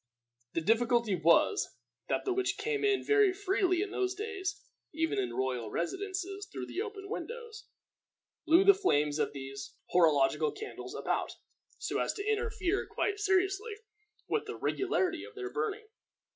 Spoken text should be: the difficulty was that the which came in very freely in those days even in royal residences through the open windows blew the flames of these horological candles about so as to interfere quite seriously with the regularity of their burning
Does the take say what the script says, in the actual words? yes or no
yes